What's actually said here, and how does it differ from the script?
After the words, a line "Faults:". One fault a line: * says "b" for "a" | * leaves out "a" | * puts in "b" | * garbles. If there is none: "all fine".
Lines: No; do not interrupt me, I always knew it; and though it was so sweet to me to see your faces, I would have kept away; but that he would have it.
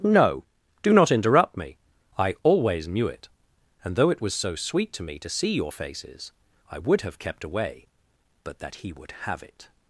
No; do not interrupt me, I always knew it; and though it was so sweet to me to see your faces, I would have kept away; but that he would have it.
Faults:
all fine